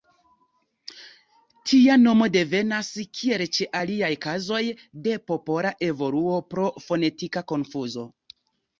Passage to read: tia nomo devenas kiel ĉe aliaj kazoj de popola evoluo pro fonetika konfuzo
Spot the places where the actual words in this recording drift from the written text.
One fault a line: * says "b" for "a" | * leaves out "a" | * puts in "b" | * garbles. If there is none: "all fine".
all fine